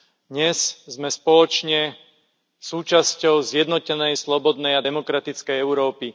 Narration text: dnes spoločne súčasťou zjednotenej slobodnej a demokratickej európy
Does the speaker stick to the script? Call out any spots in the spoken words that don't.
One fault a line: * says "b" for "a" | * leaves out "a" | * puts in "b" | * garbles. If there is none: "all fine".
* puts in "sme"